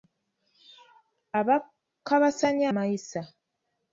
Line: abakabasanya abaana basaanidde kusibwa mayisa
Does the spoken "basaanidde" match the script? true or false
false